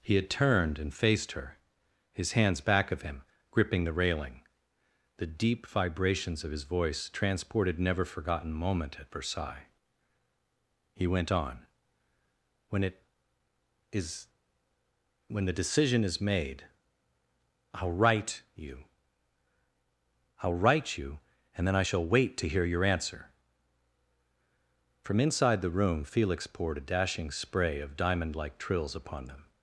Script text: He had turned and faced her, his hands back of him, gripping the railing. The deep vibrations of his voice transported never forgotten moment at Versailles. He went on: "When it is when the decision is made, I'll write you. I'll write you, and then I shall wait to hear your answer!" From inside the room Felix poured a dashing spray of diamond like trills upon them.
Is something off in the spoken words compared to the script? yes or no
no